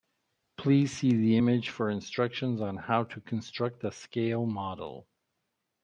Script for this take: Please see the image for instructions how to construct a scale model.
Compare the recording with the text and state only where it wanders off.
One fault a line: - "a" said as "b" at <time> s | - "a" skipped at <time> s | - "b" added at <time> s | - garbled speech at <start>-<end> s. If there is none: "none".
- "on" added at 2.6 s